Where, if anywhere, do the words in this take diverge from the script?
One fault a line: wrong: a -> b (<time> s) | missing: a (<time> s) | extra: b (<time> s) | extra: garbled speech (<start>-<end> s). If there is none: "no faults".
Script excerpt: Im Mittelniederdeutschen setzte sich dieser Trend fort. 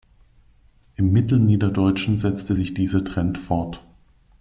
no faults